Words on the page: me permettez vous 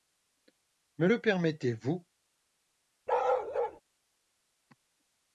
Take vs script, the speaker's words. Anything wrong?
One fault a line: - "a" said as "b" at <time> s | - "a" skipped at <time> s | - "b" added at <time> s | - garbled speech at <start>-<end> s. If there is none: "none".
- "le" added at 1.0 s